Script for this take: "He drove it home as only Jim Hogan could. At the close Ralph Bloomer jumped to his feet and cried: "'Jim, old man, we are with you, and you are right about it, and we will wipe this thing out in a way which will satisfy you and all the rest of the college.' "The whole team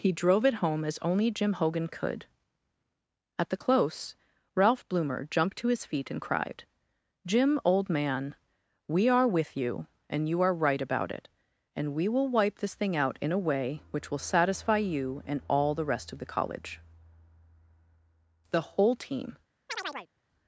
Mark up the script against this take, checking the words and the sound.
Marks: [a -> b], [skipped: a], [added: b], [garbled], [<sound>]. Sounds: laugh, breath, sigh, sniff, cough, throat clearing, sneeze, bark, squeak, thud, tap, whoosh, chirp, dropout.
"He drove it home as only Jim Hogan could. At the close Ralph Bloomer jumped to his feet and cried: "'Jim, old man, we are with you, and you are right about it, and we will wipe this thing out in a way which will satisfy you and all the rest of the college.' "The whole team [chirp]